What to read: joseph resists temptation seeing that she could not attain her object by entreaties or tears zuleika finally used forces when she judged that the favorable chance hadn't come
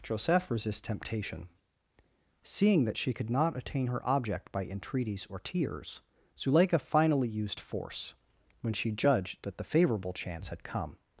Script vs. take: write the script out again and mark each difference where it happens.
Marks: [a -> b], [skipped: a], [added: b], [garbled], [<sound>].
joseph resists temptation seeing that she could not attain her object by entreaties or tears zuleika finally used [forces -> force] when she judged that the favorable chance [hadn't -> had] come